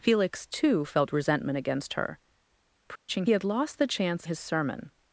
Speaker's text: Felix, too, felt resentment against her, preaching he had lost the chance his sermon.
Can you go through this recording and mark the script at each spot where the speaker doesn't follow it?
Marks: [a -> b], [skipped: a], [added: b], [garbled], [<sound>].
Felix, too, felt resentment against her, preaching [dropout] he had lost the chance his sermon.